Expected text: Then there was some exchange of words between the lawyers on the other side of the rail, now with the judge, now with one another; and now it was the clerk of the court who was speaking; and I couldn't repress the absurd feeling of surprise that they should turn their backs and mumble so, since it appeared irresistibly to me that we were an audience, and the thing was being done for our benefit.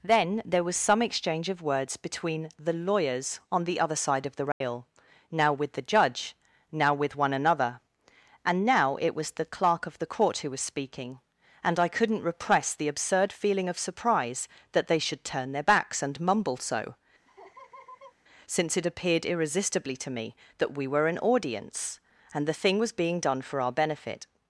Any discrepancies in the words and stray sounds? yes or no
yes